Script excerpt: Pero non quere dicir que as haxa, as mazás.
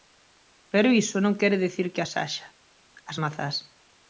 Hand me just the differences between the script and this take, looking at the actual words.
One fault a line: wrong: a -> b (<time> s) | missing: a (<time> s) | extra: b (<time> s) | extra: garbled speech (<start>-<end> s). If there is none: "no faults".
extra: iso (1.0 s)